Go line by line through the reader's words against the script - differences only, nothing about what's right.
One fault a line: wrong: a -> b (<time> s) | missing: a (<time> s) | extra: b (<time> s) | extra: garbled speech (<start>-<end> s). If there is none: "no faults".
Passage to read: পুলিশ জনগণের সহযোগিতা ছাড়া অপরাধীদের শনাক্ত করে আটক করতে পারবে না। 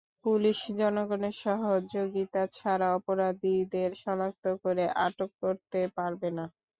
no faults